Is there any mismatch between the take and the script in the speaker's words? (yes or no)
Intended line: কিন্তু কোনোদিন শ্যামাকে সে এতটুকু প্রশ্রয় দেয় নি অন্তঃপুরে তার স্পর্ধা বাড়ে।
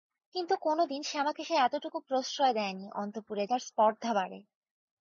no